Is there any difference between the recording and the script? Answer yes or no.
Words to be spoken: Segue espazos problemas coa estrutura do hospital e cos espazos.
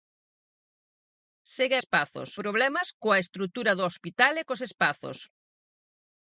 no